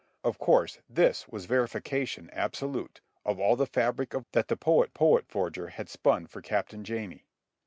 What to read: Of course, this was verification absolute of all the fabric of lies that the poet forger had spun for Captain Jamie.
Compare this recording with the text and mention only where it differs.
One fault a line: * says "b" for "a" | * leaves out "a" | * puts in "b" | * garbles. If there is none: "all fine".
* leaves out "lies"
* puts in "poet"